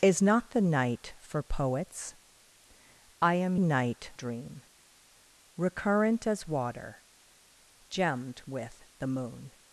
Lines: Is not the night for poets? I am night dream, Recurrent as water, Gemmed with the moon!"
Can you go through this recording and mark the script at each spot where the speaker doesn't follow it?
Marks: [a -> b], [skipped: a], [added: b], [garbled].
Is not the night for poets? I am night dream, Recurrent as water, Gemmed with the moon!"